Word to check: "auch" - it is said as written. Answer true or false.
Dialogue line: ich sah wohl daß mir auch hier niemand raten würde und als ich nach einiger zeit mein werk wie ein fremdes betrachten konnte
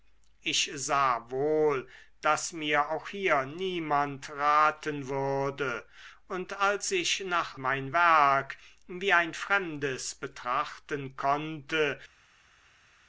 true